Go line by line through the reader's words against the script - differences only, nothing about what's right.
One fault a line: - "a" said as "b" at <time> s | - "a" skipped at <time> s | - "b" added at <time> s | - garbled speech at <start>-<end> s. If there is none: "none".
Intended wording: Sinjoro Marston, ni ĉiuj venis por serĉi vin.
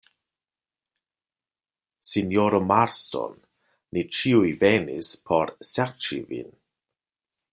none